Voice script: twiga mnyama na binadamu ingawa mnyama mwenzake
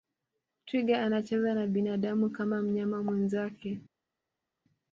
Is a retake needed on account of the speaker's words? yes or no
yes